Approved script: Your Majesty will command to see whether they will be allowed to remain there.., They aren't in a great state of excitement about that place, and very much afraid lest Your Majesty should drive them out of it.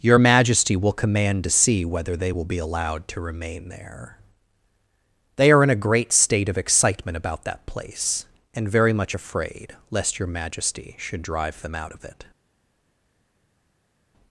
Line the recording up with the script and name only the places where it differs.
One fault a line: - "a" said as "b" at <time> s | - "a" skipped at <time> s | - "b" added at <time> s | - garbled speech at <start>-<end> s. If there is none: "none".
- "aren't" said as "are" at 5.5 s